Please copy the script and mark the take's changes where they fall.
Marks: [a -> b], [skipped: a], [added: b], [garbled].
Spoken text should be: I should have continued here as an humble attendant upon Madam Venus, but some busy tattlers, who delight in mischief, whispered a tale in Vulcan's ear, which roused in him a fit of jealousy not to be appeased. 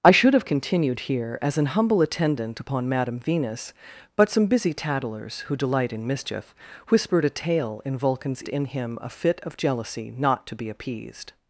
I should have continued here as an humble attendant upon Madam Venus, but some busy tattlers, who delight in mischief, whispered a tale in Vulcan's [skipped: ear, which roused] in him a fit of jealousy not to be appeased.